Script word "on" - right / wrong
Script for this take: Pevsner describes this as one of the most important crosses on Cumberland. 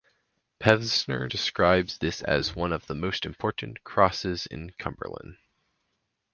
wrong